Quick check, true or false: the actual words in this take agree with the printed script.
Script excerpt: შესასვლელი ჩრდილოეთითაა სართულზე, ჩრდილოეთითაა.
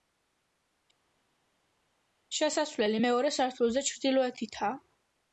false